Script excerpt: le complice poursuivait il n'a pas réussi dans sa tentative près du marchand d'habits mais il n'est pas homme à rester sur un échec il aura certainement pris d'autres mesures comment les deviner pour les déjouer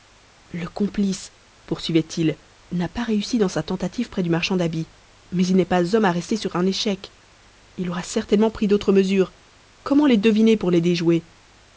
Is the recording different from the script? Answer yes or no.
no